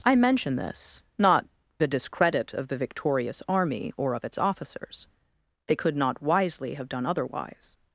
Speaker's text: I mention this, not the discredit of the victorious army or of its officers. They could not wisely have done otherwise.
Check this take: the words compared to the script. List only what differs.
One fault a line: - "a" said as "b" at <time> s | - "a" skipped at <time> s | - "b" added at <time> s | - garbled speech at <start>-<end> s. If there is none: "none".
none